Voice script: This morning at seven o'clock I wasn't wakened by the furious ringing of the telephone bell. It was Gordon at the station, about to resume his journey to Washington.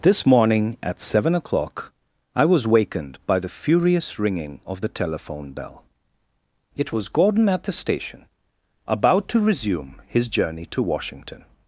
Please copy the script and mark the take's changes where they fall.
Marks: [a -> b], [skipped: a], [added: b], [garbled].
This morning at seven o'clock I [wasn't -> was] wakened by the furious ringing of the telephone bell. It was Gordon at the station, about to resume his journey to Washington.